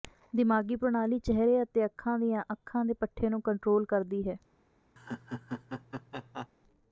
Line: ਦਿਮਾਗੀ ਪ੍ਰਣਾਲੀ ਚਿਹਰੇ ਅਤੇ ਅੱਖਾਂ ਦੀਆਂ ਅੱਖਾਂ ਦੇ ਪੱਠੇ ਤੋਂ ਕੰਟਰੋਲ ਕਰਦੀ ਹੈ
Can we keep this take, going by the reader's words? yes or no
no